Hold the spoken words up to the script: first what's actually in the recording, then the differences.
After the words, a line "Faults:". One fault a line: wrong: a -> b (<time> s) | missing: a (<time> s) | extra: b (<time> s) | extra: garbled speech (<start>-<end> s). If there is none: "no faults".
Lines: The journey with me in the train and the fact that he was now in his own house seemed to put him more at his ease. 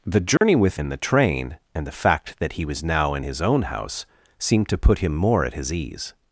The journey with in the train and the fact that he was now in his own house seemed to put him more at his ease.
Faults:
missing: me (0.8 s)